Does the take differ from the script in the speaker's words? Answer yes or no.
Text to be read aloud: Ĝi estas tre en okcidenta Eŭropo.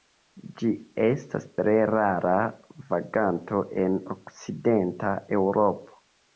yes